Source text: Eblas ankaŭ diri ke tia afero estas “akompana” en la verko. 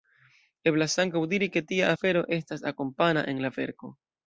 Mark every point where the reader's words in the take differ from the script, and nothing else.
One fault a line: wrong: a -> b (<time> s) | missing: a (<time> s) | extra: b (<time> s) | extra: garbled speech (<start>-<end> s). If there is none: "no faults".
no faults